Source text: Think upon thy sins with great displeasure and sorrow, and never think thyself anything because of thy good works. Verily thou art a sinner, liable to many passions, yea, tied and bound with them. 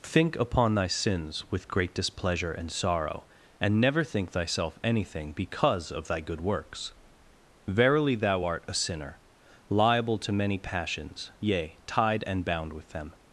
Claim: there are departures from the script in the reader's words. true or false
false